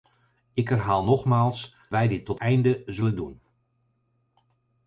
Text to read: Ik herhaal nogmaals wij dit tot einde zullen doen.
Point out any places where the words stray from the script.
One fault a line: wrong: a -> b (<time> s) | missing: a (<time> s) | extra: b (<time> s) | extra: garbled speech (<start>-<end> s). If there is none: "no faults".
no faults